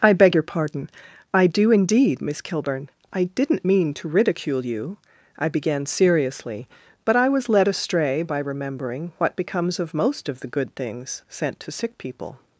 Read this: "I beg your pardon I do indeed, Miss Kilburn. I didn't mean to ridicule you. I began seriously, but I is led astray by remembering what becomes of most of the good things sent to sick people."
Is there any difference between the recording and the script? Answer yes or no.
yes